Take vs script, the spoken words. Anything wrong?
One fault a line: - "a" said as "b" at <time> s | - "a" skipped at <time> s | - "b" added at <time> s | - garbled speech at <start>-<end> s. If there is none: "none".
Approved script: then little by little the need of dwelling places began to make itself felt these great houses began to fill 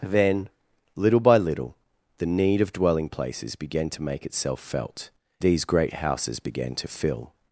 none